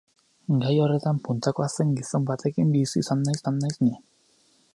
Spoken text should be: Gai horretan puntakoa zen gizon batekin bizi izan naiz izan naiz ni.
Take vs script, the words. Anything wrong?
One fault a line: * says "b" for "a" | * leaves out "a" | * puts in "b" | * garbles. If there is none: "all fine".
all fine